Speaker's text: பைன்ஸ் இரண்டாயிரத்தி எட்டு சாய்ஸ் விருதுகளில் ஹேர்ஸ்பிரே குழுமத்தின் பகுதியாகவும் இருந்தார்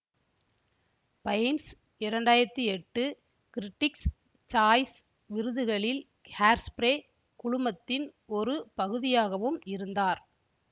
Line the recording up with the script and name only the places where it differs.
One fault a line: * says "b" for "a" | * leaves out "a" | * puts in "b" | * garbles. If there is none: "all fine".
* puts in "கிரிட்டிக்ஸ்"
* puts in "ஒரு"